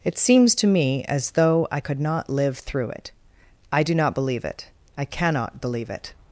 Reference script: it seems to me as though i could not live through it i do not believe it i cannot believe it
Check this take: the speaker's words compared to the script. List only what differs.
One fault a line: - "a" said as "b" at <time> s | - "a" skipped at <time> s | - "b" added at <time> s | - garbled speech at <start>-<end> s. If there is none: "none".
none